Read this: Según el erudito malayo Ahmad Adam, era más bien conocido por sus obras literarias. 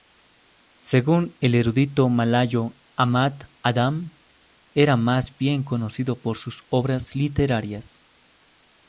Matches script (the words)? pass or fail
pass